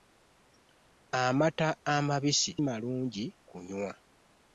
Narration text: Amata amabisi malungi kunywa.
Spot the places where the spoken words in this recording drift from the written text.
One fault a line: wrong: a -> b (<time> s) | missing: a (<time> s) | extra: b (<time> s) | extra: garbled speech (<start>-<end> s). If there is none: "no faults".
no faults